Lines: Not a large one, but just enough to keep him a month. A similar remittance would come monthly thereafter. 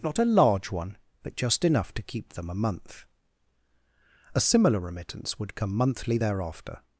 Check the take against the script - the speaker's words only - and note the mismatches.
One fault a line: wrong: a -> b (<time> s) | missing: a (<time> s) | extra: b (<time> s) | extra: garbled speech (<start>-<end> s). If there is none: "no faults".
wrong: him -> them (2.3 s)